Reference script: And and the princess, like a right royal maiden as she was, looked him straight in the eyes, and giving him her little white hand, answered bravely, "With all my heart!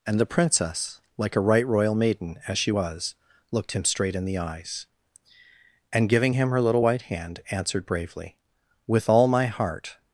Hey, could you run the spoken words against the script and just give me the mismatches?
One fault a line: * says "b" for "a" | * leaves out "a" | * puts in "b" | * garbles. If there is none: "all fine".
* leaves out "and"